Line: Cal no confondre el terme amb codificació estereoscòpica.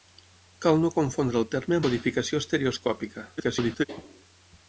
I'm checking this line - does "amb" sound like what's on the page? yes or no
no